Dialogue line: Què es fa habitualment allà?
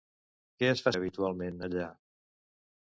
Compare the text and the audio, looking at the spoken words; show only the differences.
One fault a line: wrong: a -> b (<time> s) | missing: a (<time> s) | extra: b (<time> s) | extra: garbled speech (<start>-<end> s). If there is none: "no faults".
no faults